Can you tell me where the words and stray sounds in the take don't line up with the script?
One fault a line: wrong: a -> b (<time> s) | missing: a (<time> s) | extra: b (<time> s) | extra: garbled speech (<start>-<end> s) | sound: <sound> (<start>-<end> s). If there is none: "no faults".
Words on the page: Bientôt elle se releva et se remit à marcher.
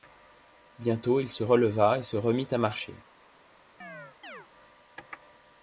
wrong: elle -> il (1.2 s)
sound: chirp (3.8-4.5 s)